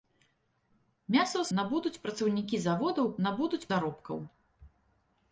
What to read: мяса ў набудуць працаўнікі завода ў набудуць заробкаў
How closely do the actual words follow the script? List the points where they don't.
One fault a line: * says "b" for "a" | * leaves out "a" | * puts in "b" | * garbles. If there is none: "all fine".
all fine